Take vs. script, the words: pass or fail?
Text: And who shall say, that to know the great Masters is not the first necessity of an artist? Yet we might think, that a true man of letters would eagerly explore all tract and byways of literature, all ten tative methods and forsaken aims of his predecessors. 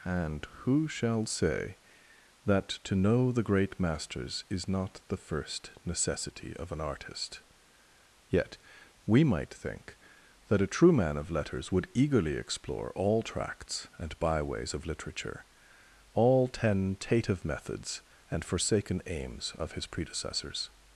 fail